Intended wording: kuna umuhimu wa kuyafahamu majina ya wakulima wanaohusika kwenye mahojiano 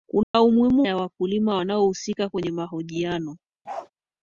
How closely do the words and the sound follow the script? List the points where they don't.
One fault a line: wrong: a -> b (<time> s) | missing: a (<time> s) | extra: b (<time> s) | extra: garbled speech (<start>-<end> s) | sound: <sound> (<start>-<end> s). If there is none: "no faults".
sound: dropout (0.2-0.3 s)
missing: wa kuyafahamu majina (0.9 s)
sound: bark (3.6-3.9 s)